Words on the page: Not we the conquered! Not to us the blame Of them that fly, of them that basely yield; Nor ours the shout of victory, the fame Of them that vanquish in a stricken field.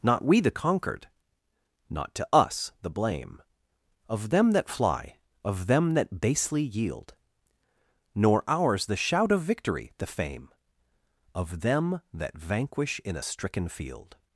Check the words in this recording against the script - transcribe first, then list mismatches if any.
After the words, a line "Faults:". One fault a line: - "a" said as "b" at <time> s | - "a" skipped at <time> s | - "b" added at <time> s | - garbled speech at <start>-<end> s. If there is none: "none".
Not we the conquered! Not to us the blame Of them that fly, of them that basely yield; Nor ours the shout of victory, the fame Of them that vanquish in a stricken field.
Faults:
none